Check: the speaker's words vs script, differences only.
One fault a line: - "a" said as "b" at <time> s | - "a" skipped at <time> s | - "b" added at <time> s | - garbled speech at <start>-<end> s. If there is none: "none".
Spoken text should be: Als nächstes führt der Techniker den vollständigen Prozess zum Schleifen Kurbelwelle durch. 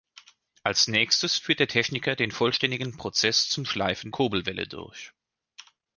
none